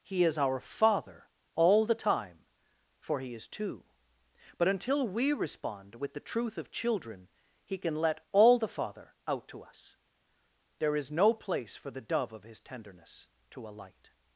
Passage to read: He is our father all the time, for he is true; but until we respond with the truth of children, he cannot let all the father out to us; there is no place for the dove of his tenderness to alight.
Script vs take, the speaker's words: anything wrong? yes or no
yes